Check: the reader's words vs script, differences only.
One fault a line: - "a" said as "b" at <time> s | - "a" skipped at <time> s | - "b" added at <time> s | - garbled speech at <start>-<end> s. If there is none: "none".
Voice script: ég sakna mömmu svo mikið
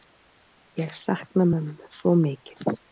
none